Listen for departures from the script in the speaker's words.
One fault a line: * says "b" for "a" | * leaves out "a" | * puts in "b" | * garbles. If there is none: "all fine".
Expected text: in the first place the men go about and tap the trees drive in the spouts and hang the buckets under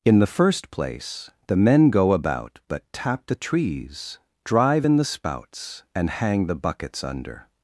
* says "but" for "and"